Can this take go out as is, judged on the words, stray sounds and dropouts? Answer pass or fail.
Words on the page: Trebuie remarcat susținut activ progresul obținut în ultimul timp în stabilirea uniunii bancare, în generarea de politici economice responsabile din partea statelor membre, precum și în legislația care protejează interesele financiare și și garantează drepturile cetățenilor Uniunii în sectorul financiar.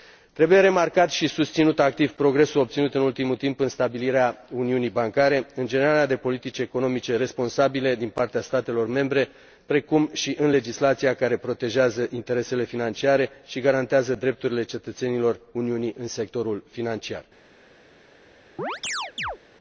fail